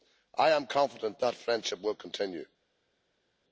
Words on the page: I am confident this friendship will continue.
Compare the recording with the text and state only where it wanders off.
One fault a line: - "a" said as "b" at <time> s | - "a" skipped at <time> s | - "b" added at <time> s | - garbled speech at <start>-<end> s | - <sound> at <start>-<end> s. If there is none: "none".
- "this" said as "that" at 1.2 s